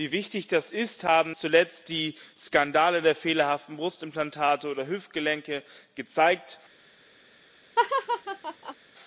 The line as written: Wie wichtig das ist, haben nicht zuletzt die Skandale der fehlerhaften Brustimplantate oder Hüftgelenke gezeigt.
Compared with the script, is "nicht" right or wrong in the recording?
wrong